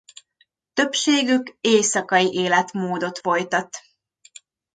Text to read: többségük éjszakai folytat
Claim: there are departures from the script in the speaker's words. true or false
true